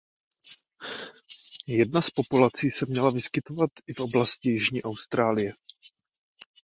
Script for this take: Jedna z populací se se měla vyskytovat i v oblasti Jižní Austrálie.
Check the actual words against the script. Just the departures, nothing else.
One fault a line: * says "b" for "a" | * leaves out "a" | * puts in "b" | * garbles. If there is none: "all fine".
* leaves out "se"